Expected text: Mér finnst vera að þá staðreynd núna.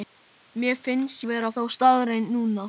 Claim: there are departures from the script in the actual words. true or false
false